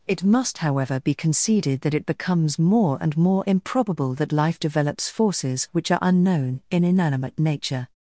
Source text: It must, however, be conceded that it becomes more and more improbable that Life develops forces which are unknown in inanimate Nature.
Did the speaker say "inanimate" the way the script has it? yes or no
yes